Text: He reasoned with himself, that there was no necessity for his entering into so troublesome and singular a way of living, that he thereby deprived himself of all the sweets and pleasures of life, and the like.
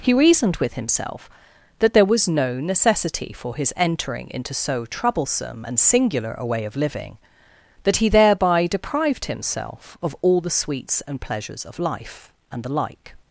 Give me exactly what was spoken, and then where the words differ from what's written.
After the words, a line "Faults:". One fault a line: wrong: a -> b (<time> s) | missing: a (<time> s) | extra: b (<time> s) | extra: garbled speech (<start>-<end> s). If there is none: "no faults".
He reasoned with himself, that there was no necessity for his entering into so troublesome and singular a way of living, that he thereby deprived himself of all the sweets and pleasures of life, and the like.
Faults:
no faults